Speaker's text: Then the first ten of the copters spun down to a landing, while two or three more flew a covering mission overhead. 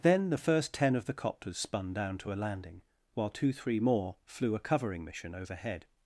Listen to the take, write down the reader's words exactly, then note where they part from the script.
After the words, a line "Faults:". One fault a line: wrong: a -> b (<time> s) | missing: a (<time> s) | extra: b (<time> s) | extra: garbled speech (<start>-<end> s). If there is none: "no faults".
Then the first ten of the copters spun down to a landing, while two three more flew a covering mission overhead.
Faults:
missing: or (3.5 s)